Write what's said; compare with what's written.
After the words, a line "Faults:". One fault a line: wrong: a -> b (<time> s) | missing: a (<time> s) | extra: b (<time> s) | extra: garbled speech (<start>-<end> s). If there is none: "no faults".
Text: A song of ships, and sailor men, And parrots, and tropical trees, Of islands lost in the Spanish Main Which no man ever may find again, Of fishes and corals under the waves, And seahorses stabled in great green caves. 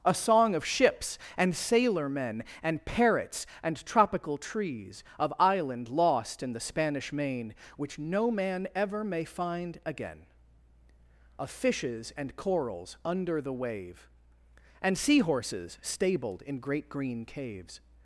A song of ships, and sailor men, And parrots, and tropical trees, Of island lost in the Spanish Main Which no man ever may find again, Of fishes and corals under the wave, And seahorses stabled in great green caves.
Faults:
wrong: islands -> island (5.4 s)
wrong: waves -> wave (13.5 s)